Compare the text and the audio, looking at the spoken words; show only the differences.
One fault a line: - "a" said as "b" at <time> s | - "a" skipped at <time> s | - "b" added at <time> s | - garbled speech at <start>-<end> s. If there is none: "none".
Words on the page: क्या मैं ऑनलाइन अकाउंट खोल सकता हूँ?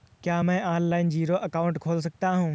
- "जीरो" added at 1.1 s